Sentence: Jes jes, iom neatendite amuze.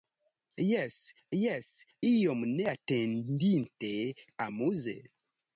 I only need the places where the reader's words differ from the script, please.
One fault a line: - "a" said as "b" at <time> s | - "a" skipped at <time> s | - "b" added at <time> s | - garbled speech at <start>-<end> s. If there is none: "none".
none